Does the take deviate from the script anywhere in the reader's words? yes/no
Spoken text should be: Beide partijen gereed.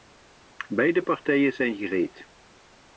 yes